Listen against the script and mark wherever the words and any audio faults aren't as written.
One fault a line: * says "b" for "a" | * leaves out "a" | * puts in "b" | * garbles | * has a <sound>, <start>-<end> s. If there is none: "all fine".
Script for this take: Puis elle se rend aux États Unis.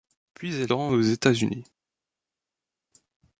* leaves out "se"